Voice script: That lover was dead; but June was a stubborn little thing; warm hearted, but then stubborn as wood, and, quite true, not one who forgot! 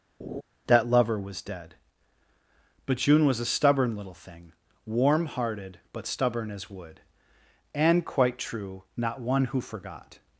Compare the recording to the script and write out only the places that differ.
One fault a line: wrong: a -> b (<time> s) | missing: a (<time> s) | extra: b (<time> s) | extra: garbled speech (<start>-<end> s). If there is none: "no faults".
missing: then (6.1 s)